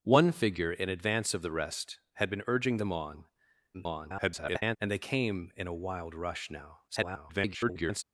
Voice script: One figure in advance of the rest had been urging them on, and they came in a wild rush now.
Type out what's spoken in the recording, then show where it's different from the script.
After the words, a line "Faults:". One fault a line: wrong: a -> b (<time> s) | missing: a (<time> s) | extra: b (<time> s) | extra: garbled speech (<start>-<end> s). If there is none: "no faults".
One figure in advance of the rest had been urging them on, [garbled] and they came in a wild rush now. [garbled]
Faults:
extra: garbled speech (3.7-4.8 s)
extra: garbled speech (6.9-8.0 s)